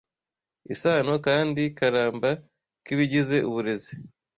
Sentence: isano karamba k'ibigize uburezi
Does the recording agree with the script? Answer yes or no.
no